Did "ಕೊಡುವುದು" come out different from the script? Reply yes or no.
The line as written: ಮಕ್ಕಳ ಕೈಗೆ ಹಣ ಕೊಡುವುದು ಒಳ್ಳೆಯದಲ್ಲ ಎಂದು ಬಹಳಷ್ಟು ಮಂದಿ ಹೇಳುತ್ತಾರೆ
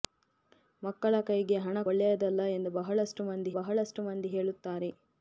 yes